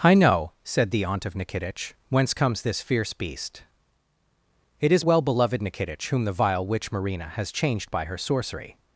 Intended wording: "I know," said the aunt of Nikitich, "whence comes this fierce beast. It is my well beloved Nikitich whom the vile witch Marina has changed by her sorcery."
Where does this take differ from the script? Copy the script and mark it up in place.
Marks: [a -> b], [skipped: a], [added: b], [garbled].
"I know," said the aunt of Nikitich, "whence comes this fierce beast. It is [skipped: my] well beloved Nikitich whom the vile witch Marina has changed by her sorcery."